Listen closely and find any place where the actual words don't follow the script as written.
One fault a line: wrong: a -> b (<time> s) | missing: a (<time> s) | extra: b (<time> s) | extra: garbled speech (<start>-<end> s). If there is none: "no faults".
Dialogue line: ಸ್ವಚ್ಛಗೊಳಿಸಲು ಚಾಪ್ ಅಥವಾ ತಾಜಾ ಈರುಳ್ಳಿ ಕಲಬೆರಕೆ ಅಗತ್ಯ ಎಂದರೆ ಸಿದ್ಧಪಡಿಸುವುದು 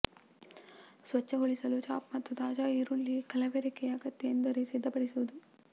wrong: ಅಥವಾ -> ಮತ್ತು (2.1 s)